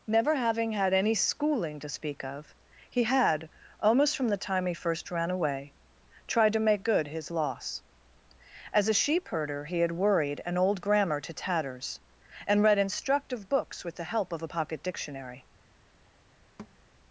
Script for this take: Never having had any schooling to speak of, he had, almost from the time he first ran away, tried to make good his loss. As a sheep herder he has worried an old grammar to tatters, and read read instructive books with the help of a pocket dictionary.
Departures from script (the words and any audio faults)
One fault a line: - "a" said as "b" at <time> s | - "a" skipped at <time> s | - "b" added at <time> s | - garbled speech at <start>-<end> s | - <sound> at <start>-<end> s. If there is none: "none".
- "has" said as "had" at 9.8 s
- "read" skipped at 12.8 s
- thud at 16.6-16.8 s